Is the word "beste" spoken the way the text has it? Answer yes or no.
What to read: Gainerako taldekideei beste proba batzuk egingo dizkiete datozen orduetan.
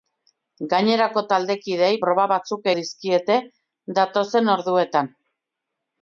no